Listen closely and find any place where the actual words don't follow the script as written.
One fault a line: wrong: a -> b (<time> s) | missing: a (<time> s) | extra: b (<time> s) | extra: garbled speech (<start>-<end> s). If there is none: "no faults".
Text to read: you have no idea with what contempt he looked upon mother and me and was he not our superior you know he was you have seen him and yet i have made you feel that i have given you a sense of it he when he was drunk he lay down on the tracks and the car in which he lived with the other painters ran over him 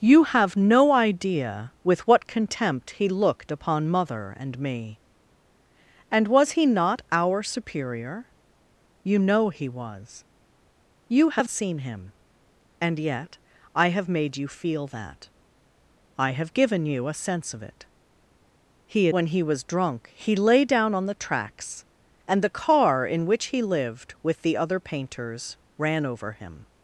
no faults